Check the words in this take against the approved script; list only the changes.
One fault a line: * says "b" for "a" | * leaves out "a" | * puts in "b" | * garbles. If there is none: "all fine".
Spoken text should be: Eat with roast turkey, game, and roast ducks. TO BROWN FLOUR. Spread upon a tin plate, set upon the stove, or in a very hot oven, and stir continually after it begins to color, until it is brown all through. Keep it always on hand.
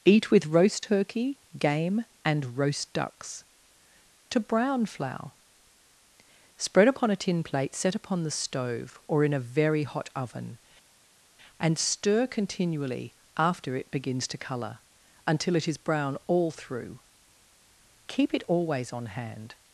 all fine